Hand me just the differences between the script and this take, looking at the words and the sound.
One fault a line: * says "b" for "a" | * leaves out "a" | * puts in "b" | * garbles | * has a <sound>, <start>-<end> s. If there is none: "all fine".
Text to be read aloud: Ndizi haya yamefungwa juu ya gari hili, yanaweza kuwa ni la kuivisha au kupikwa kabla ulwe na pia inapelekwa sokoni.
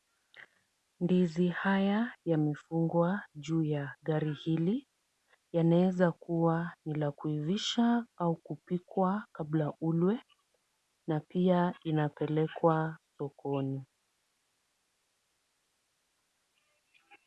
all fine